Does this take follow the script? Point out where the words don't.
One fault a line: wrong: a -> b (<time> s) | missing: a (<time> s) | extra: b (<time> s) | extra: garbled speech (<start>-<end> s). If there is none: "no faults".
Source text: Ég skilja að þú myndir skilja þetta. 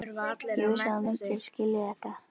wrong: skilja -> vissi (0.7 s)